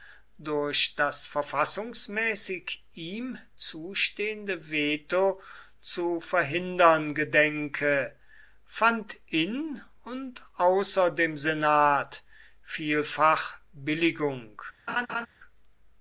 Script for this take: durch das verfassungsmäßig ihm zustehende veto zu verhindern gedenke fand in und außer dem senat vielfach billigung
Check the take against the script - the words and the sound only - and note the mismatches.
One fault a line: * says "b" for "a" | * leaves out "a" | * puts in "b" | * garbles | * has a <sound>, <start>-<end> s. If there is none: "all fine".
* has a laugh, 14.9-15.3 s